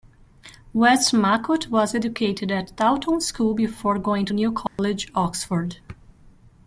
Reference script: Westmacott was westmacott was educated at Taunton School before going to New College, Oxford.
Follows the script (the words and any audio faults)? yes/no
no